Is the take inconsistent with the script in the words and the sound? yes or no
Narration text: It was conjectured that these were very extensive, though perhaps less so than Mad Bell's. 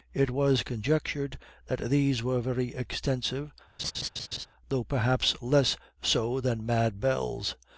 yes